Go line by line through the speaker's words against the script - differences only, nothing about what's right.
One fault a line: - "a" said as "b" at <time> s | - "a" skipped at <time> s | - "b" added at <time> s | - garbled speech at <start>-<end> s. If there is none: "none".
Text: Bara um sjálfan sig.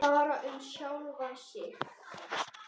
none